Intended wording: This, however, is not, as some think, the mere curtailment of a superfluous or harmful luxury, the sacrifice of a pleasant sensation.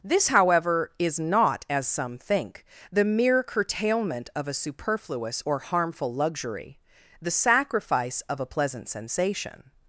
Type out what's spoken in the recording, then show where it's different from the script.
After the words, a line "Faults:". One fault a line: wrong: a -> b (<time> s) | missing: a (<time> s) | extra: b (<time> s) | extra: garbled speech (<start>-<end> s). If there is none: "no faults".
This, however, is not, as some think, the mere curtailment of a superfluous or harmful luxury, the sacrifice of a pleasant sensation.
Faults:
no faults